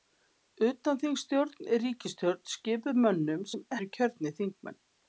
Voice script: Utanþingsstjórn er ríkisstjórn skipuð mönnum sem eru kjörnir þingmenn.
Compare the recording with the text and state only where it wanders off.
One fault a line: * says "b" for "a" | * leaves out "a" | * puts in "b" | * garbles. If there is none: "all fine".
all fine